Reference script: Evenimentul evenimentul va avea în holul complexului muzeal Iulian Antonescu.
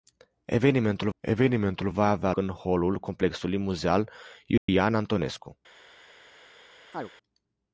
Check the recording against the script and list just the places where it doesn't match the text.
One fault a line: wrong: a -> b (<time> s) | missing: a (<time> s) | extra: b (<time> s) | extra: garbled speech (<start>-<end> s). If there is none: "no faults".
no faults